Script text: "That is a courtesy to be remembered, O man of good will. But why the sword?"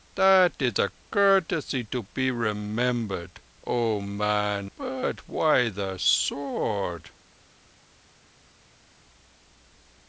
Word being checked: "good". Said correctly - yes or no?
no